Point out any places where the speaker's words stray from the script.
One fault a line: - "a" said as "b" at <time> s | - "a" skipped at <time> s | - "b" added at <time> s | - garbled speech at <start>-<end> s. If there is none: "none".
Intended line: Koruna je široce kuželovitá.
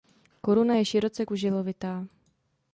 none